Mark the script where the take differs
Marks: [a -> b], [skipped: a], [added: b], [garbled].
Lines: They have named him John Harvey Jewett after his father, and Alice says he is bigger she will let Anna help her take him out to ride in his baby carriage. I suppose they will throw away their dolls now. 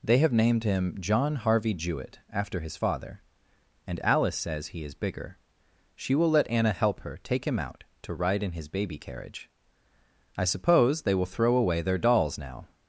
They have named him John Harvey Jewett after his father, and Alice says he is bigger she will let Anna help her take him out to ride in his baby carriage. I suppose they will throw away their dolls now.